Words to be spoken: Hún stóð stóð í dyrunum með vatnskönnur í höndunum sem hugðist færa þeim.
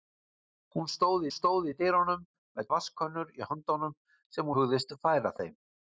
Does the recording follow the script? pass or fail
pass